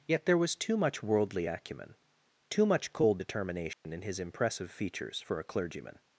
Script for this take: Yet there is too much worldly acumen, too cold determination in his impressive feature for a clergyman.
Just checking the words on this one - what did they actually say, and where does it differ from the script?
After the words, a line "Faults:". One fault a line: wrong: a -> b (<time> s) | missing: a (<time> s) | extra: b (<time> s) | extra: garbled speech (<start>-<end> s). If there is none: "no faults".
Yet there was too much worldly acumen, too much cold determination in his impressive features for a clergyman.
Faults:
wrong: is -> was (0.4 s)
extra: much (2.7 s)
wrong: feature -> features (4.7 s)